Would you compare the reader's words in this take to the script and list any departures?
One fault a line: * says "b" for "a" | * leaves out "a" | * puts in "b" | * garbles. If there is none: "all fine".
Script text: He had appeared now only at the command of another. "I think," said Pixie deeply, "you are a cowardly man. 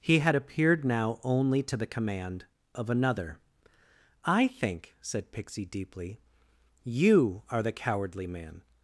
* says "to" for "at"
* says "the" for "a"